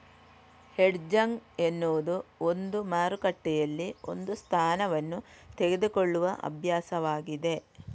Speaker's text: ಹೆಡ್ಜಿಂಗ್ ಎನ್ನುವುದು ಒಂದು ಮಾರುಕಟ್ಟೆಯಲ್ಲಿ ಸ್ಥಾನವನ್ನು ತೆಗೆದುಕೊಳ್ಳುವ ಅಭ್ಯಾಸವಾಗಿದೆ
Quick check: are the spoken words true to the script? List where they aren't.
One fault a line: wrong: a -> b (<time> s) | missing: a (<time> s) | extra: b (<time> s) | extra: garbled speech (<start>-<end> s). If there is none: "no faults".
extra: ಒಂದು (4.1 s)